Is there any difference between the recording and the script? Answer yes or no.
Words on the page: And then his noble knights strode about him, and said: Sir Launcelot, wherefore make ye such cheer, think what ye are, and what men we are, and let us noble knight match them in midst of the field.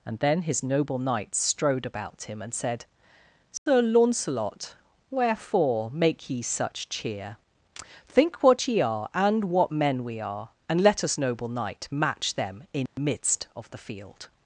no